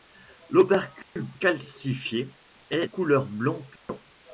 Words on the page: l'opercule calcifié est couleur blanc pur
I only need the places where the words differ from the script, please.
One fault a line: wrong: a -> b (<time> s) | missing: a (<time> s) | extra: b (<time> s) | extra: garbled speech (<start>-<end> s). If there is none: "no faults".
no faults